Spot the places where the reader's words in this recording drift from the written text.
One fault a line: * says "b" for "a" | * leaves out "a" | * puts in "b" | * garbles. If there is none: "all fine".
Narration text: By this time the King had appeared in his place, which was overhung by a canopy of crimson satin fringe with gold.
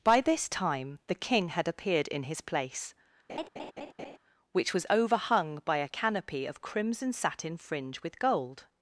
all fine